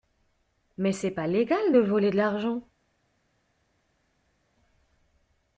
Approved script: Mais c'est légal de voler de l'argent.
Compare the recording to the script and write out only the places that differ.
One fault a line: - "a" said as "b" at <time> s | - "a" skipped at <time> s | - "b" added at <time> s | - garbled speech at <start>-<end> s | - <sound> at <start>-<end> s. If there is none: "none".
- "pas" added at 1.1 s